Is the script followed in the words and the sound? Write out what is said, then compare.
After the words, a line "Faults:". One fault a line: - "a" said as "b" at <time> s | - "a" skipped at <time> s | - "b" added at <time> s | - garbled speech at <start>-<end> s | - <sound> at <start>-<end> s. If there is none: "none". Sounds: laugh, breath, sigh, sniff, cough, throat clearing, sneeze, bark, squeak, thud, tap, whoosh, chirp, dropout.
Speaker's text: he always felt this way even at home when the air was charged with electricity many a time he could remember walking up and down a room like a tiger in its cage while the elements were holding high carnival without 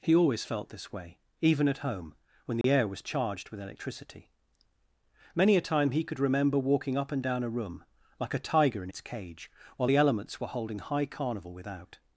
he always felt this way even at home when the air was charged with electricity many a time he could remember walking up and down a room like a tiger in its cage while the elements were holding high carnival without
Faults:
- dropout at 2.6-2.6 s